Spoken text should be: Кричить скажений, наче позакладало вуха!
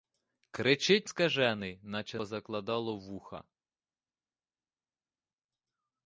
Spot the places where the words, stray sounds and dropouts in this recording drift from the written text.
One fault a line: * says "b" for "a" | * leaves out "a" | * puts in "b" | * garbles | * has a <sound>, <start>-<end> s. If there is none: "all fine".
all fine